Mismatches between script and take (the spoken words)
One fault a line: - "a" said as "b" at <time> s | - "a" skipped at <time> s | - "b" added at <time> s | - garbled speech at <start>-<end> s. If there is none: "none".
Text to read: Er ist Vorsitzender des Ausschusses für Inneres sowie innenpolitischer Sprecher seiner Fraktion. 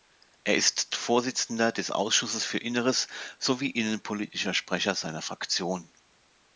none